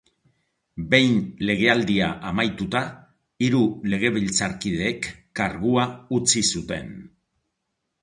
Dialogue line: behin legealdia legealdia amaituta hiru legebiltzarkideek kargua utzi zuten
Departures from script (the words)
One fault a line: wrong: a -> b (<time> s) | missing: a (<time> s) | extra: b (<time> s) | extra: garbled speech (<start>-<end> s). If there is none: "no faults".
missing: legealdia (2.1 s)